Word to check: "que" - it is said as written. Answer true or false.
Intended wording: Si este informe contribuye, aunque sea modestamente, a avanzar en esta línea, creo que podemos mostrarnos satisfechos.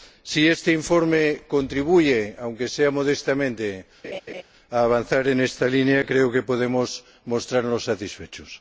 true